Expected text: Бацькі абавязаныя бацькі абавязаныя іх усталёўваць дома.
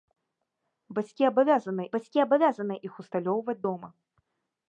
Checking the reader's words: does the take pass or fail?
pass